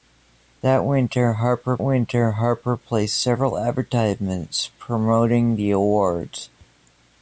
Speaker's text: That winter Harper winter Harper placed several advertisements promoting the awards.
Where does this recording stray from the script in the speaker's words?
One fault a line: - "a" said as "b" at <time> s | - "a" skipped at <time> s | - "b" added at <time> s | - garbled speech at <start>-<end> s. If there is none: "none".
none